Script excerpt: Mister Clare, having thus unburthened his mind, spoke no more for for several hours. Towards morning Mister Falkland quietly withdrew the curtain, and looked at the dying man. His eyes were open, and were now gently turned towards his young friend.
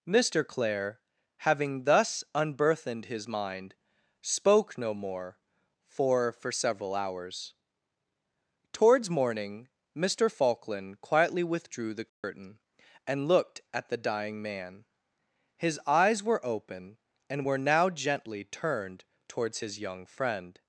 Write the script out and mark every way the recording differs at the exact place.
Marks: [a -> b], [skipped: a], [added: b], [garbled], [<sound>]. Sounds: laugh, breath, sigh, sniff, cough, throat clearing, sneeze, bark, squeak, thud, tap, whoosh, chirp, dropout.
Mister Clare, having thus unburthened his mind, spoke no more for for several hours. Towards morning Mister Falkland quietly withdrew the curtain, [dropout] and looked at the dying man. His eyes were open, and were now gently turned towards his young friend.